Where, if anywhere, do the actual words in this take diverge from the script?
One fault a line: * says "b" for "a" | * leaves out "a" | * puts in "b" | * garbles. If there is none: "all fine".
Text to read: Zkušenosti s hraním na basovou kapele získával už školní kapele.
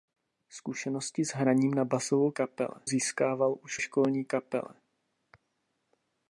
all fine